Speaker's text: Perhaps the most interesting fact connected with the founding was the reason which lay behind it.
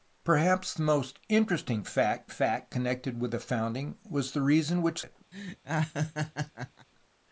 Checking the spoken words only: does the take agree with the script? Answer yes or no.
no